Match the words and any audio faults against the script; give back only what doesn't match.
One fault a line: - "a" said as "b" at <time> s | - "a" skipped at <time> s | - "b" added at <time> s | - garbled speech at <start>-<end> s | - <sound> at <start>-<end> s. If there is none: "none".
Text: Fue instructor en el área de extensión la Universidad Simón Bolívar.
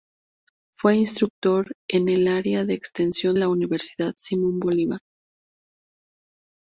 none